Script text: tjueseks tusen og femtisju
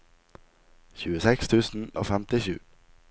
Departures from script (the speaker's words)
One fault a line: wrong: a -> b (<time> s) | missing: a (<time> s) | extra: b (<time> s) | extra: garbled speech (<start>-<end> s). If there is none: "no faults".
no faults